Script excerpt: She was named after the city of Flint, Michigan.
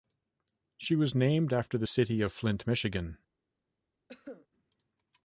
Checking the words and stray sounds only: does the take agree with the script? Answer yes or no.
no